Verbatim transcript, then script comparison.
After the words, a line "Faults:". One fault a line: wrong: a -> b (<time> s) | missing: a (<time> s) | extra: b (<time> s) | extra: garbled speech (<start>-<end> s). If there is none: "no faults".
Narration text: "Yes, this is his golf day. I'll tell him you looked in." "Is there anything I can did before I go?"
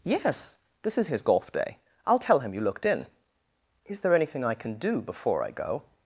"Yes, this is his golf day. I'll tell him you looked in." "Is there anything I can do before I go?"
Faults:
wrong: did -> do (4.8 s)